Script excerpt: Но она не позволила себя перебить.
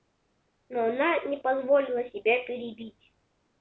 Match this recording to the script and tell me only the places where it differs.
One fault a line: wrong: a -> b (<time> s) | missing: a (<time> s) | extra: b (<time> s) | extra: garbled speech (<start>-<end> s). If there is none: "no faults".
no faults